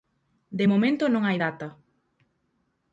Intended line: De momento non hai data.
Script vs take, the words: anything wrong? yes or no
no